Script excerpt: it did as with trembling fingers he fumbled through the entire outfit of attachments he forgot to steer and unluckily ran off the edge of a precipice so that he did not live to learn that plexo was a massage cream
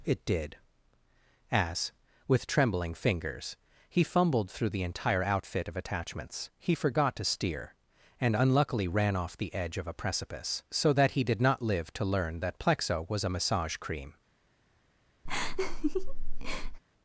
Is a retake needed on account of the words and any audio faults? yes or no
yes